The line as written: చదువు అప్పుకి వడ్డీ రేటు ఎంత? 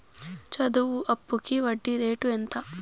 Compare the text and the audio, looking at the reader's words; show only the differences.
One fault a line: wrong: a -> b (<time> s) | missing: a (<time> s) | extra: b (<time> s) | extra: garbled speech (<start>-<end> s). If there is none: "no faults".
no faults